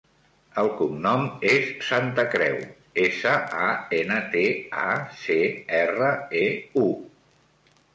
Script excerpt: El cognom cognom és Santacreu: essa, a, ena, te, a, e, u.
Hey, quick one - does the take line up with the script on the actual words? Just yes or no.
no